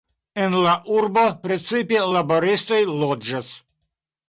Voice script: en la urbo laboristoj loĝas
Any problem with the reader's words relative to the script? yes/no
yes